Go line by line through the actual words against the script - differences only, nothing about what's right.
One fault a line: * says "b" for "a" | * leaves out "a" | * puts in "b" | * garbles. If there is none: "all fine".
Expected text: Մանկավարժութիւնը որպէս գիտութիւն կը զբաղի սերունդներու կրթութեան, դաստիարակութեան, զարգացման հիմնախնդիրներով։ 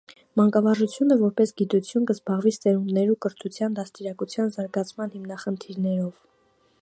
all fine